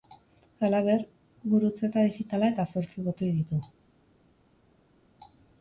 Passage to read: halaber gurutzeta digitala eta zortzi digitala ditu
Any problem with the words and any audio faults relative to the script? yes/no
yes